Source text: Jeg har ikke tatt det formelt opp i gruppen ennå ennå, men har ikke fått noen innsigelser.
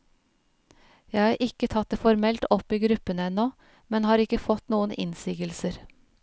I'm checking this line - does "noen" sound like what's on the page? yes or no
yes